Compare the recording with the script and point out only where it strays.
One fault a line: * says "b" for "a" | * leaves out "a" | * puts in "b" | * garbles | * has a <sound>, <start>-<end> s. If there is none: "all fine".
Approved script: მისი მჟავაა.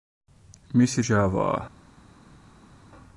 all fine